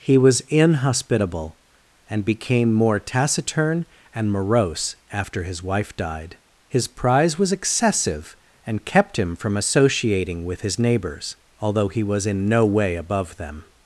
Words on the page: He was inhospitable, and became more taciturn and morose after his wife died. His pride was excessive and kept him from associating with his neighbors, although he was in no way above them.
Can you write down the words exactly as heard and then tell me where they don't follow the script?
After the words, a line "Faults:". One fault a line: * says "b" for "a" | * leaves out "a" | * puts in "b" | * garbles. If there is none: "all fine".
He was inhospitable, and became more taciturn and morose after his wife died. His prize was excessive and kept him from associating with his neighbors, although he was in no way above them.
Faults:
* says "prize" for "pride"